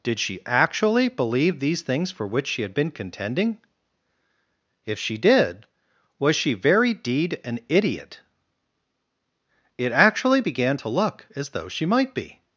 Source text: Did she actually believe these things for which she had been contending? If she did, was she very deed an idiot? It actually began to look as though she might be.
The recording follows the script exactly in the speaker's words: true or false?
true